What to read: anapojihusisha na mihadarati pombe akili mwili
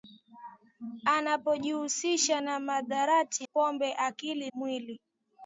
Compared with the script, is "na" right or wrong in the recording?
right